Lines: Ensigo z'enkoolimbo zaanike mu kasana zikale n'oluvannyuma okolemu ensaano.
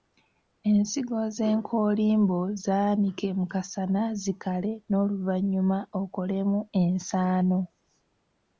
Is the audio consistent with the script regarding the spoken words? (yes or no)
yes